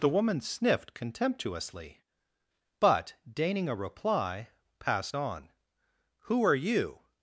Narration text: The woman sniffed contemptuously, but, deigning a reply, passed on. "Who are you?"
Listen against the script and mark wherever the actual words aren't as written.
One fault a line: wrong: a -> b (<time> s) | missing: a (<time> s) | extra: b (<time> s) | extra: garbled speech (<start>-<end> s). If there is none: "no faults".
no faults